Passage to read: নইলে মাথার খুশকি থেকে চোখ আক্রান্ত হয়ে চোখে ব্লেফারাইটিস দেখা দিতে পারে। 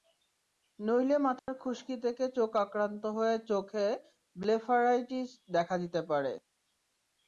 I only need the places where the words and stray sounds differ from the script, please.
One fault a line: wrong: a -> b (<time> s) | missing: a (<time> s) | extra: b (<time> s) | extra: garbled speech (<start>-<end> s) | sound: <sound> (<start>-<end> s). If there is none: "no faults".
sound: dropout (1.4-1.5 s)